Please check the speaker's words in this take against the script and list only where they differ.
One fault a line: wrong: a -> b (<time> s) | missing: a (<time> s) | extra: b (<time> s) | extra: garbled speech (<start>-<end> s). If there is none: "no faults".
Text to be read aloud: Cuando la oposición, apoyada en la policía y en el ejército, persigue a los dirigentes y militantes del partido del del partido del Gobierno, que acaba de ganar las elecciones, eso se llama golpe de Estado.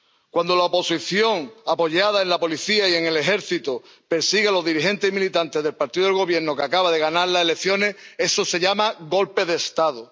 missing: del partido del (6.2 s)